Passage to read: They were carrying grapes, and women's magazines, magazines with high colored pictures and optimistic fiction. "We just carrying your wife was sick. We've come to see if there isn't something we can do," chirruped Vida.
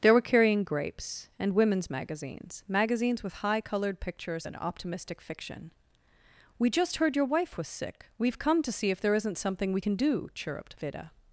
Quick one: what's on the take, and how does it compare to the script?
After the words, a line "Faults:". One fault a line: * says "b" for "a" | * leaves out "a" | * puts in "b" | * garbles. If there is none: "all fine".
They were carrying grapes, and women's magazines, magazines with high colored pictures and optimistic fiction. "We just heard your wife was sick. We've come to see if there isn't something we can do," chirruped Vida.
Faults:
* says "heard" for "carrying"